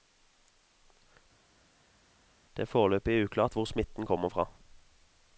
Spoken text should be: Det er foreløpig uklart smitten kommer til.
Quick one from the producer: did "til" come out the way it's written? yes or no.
no